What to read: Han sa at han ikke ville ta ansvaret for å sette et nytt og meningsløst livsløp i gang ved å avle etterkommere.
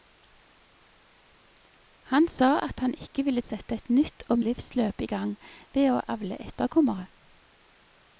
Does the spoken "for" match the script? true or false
false